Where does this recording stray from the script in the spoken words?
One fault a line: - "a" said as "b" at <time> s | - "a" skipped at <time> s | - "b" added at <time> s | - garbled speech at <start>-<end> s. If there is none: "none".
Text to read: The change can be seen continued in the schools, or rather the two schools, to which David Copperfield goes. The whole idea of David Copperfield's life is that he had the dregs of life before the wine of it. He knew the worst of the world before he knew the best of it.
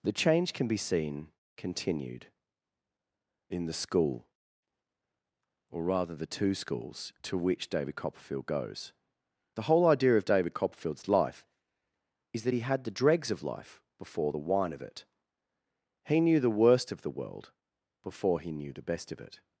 - "schools" said as "school" at 3.7 s